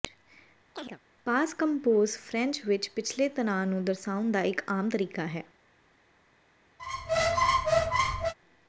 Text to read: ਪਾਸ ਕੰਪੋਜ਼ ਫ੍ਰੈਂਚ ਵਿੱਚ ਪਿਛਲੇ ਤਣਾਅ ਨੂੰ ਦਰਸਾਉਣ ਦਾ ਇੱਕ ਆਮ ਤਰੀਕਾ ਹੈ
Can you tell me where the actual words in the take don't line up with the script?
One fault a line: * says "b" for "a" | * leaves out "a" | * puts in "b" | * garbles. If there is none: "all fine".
all fine